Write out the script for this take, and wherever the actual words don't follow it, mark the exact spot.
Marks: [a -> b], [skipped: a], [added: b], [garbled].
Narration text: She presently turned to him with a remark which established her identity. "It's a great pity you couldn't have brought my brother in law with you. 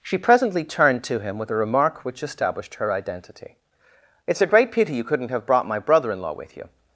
She presently turned to him with a remark which established her identity. "It's a great pity you couldn't have brought my brother in law with you.